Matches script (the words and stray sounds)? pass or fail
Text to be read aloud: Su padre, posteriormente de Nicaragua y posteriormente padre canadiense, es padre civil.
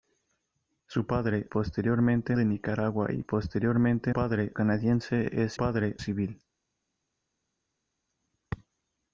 pass